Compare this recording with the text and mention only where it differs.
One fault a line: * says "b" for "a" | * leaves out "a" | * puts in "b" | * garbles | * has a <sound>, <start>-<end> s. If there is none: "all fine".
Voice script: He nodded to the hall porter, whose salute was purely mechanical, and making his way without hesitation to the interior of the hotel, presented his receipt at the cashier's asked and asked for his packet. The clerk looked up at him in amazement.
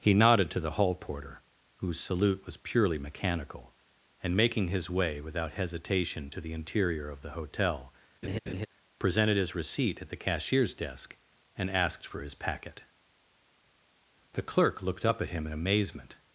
* has a laugh, 8.2-8.7 s
* says "desk" for "asked"